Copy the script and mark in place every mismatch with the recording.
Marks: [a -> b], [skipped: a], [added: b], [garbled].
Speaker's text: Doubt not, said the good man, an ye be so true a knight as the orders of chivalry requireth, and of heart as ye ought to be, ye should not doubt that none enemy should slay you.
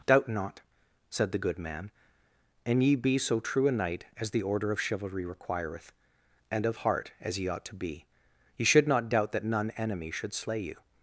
Doubt not, said the good man, an ye be so true a knight as the [orders -> order] of chivalry requireth, and of heart as ye ought to be, ye should not doubt that none enemy should slay you.